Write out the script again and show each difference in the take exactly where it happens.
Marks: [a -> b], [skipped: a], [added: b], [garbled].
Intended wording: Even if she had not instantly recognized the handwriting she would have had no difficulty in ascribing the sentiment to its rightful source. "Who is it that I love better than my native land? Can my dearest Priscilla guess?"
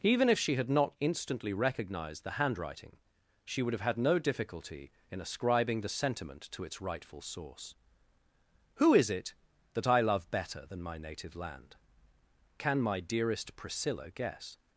Even if she had not instantly recognized the handwriting she would have had no difficulty in ascribing the sentiment to its rightful source. "Who is it that I love better than my native land? Can my dearest Priscilla guess?"